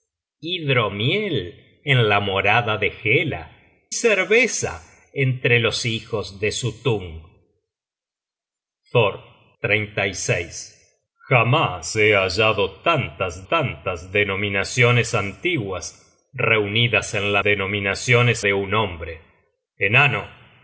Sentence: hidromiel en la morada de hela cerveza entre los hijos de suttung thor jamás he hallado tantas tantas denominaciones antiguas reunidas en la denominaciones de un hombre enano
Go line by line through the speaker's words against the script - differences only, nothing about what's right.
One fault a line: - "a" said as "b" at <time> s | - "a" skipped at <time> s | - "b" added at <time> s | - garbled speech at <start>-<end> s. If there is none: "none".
none